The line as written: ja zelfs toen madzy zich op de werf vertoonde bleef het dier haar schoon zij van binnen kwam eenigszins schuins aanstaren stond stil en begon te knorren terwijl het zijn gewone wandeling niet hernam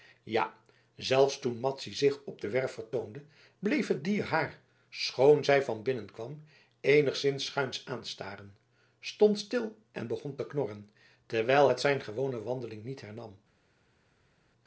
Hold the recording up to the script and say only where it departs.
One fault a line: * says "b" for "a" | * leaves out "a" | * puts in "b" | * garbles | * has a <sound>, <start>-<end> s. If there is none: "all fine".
all fine